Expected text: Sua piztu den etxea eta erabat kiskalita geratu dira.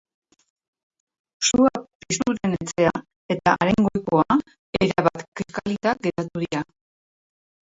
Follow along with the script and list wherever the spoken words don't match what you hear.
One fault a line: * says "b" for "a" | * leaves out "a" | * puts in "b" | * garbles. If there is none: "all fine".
* puts in "haren goikoa"